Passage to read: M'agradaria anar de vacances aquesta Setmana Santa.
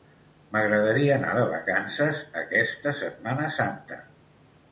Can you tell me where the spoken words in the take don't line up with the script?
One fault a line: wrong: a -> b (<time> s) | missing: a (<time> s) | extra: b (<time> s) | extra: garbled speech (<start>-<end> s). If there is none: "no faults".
no faults